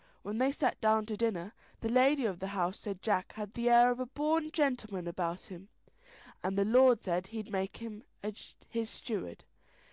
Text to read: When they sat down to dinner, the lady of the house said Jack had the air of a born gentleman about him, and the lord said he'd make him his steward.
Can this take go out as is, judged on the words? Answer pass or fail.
pass